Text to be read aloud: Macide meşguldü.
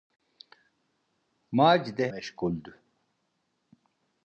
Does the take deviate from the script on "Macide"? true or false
false